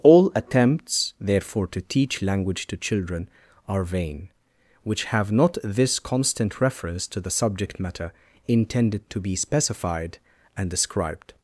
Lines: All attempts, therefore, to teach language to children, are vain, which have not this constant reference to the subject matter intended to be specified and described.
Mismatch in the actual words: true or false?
false